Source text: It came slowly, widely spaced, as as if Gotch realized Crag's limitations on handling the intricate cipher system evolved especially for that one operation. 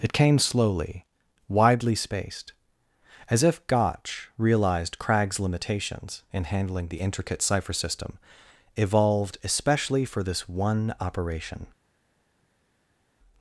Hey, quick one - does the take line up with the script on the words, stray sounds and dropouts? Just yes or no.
no